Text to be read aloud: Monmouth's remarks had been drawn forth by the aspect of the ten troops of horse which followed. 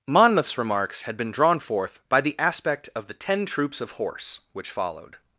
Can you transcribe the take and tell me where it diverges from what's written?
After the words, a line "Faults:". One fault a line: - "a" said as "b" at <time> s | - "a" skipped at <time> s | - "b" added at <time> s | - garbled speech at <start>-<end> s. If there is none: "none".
Monmouth's remarks had been drawn forth by the aspect of the ten troops of horse which followed.
Faults:
none